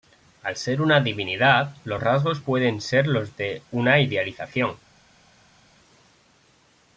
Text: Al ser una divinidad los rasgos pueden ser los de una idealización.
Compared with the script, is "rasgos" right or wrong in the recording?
right